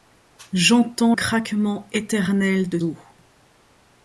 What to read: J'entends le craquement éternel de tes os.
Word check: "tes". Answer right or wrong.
wrong